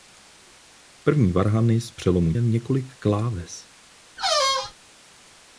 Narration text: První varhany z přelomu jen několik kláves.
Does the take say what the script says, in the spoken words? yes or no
yes